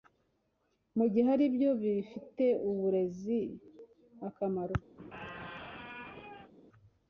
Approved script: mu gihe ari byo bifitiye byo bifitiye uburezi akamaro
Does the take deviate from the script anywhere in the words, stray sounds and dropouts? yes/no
yes